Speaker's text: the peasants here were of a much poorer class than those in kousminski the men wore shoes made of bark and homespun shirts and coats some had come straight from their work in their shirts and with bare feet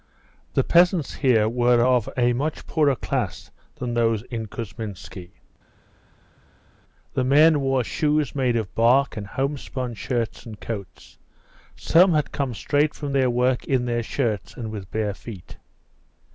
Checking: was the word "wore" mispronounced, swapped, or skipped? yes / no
no